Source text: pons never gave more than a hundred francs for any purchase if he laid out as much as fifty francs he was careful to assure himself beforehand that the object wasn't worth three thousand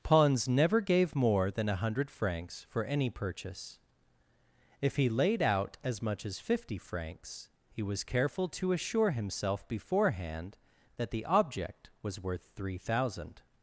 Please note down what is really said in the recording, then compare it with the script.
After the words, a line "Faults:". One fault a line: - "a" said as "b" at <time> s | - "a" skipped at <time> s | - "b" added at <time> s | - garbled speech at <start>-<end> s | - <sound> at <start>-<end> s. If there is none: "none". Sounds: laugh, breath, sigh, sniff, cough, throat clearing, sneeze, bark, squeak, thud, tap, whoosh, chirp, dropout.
pons never gave more than a hundred francs for any purchase if he laid out as much as fifty francs he was careful to assure himself beforehand that the object was worth three thousand
Faults:
- "wasn't" said as "was" at 12.0 s